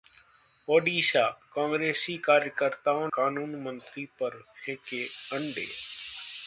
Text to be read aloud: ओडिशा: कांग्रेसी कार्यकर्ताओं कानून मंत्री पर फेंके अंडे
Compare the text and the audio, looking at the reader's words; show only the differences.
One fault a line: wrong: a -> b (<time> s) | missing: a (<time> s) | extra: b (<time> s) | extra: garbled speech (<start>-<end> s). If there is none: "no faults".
no faults